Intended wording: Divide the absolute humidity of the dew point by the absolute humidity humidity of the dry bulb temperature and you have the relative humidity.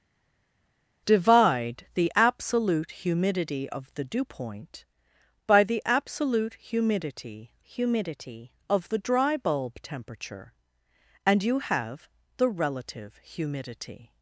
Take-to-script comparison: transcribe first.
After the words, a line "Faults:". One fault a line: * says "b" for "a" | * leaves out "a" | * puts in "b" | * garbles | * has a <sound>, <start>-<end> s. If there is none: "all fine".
Divide the absolute humidity of the dew point by the absolute humidity humidity of the dry bulb temperature and you have the relative humidity.
Faults:
all fine